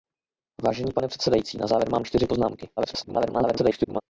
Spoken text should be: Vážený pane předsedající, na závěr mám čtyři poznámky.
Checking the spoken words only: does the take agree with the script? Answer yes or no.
no